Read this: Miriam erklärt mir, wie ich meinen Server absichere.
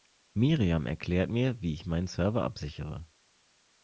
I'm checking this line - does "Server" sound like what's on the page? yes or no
yes